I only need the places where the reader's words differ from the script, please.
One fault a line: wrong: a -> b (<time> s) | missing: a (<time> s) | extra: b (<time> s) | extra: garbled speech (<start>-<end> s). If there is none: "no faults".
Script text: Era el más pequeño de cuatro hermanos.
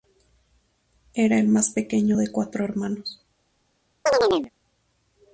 no faults